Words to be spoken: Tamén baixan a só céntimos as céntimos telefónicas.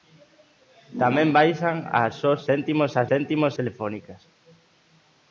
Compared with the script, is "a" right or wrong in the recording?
right